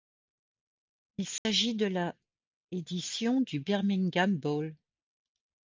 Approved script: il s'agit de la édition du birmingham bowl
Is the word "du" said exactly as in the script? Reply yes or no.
yes